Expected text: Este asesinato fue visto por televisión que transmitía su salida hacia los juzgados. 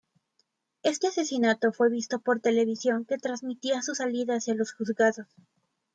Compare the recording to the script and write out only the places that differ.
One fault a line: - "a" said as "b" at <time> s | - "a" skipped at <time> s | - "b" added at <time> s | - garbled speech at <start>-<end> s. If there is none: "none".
none